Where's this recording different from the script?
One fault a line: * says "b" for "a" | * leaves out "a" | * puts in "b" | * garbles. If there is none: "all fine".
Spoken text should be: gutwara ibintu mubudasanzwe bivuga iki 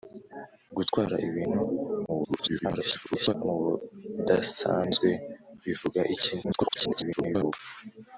* garbles
* garbles